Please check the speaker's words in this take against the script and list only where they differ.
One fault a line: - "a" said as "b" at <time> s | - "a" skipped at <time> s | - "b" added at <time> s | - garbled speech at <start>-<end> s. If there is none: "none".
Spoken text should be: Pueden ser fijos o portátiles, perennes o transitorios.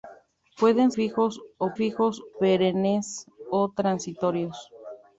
- "ser" skipped at 0.9 s
- "portátiles" said as "fijos" at 1.7 s